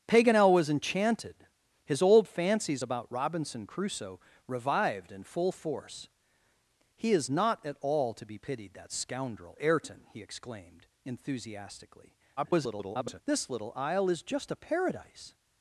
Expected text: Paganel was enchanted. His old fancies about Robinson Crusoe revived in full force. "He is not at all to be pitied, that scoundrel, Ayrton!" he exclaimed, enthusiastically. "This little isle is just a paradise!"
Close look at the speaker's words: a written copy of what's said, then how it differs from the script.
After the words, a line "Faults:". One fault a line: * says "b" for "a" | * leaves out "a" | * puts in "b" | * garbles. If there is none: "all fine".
Paganel was enchanted. His old fancies about Robinson Crusoe revived in full force. "He is not at all to be pitied, that scoundrel, Ayrton!" he exclaimed, enthusiastically. [garbled] "This little isle is just a paradise!"
Faults:
* garbles